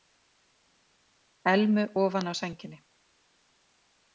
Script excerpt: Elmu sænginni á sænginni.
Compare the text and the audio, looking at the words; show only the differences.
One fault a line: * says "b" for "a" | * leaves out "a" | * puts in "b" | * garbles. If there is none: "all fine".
* says "ofan" for "sænginni"